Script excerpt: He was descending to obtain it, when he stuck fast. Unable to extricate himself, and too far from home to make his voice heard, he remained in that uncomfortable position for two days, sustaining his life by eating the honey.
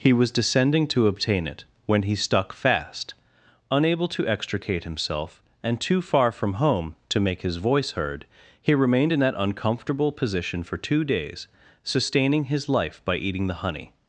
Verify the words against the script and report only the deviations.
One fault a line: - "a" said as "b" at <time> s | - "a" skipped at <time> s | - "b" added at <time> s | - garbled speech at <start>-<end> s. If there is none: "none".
none